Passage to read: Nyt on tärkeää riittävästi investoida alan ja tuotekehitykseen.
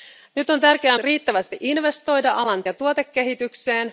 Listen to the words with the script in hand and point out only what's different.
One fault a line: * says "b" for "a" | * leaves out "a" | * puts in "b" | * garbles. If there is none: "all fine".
all fine